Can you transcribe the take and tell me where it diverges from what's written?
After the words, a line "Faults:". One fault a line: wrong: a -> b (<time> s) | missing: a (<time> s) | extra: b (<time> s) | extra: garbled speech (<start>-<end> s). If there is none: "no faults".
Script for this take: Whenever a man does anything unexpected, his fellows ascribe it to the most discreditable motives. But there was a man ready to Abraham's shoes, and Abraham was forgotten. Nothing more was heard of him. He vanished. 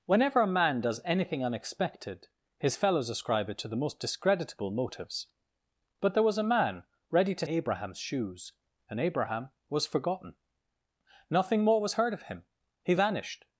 Whenever a man does anything unexpected, his fellows ascribe it to the most discreditable motives. But there was a man ready to Abraham's shoes, and Abraham was forgotten. Nothing more was heard of him. He vanished.
Faults:
no faults